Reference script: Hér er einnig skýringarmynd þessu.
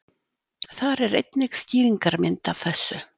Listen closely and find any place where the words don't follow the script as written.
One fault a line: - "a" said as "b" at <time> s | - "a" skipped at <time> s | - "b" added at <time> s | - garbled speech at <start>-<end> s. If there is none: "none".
- "Hér" said as "Þar" at 0.8 s
- "af" added at 2.5 s